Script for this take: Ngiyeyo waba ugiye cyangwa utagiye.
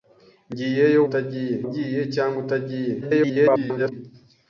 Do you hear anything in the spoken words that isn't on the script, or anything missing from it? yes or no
yes